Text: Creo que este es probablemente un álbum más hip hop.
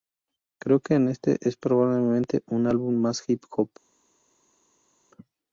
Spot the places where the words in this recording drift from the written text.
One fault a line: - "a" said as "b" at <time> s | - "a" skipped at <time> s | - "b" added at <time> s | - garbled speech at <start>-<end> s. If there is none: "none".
none